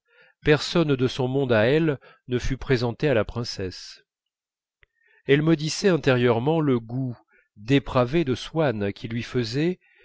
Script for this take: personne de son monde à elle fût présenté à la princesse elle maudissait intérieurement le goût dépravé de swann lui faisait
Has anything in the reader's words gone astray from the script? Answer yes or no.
yes